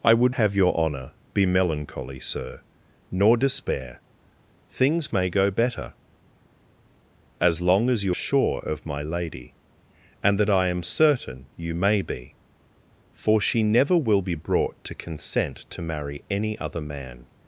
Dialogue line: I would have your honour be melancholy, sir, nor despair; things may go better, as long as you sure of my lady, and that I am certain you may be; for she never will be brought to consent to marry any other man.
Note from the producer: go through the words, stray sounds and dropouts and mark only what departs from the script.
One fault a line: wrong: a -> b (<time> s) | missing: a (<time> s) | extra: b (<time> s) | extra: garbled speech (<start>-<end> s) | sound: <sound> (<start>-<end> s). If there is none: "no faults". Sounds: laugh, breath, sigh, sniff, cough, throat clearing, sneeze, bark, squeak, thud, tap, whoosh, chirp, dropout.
no faults